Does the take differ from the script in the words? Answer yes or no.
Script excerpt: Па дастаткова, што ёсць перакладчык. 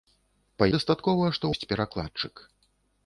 no